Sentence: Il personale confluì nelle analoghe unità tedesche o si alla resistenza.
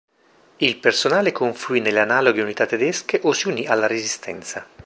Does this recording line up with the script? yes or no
no